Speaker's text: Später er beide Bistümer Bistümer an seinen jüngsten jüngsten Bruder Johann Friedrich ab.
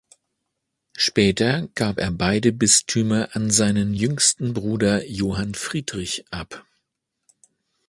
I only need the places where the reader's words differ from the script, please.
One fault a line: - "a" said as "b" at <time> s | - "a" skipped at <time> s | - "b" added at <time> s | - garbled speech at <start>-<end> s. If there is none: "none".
- "gab" added at 1.8 s
- "Bistümer" skipped at 3.3 s
- "jüngsten" skipped at 4.5 s